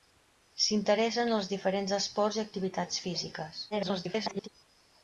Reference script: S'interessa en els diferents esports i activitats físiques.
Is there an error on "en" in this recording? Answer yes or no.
no